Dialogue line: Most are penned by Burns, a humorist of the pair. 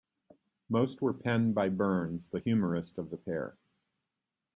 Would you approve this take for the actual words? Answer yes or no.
no